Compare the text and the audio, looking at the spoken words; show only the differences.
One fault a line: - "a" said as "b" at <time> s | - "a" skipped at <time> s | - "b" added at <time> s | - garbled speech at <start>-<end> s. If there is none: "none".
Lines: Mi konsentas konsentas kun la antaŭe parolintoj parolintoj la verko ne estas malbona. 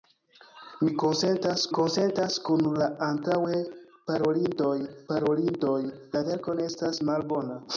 none